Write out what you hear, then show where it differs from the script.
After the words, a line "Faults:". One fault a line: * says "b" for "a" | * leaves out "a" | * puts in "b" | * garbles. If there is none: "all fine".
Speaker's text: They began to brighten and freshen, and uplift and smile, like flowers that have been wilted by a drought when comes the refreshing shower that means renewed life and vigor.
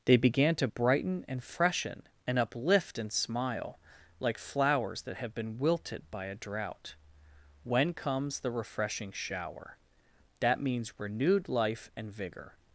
They began to brighten and freshen, and uplift and smile, like flowers that have been wilted by a drought when comes the refreshing shower that means renewed life and vigor.
Faults:
all fine